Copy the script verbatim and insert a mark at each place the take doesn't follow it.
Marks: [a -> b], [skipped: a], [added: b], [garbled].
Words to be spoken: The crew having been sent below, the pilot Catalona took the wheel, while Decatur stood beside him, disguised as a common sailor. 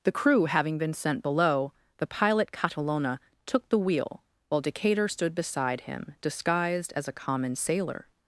The crew having been sent below, the pilot Catalona took the wheel, while Decatur stood beside him, disguised as a common sailor.